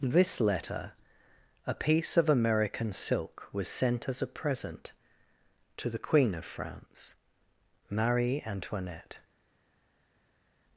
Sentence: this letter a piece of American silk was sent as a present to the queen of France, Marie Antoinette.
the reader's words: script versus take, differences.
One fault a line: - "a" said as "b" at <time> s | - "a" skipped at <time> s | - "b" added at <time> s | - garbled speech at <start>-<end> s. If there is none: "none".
none